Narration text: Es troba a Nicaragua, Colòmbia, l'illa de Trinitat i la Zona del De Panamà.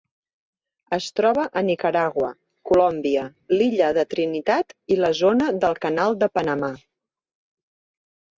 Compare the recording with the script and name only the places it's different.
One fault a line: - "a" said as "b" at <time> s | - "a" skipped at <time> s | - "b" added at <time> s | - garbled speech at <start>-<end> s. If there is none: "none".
- "Canal" added at 5.8 s